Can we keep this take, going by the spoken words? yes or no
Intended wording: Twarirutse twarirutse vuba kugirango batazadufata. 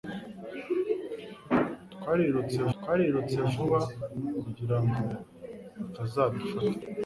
yes